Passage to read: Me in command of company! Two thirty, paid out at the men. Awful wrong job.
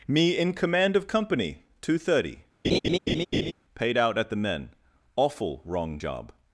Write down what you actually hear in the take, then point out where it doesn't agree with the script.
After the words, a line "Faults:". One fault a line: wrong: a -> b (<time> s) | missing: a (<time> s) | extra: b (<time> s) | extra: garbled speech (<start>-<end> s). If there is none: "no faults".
Me in command of company! Two thirty, paid out at the men. Awful wrong job.
Faults:
no faults